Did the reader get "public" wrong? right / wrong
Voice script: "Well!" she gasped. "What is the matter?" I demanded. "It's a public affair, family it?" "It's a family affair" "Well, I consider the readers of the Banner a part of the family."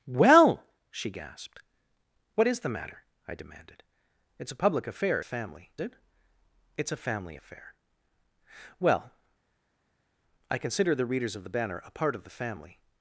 right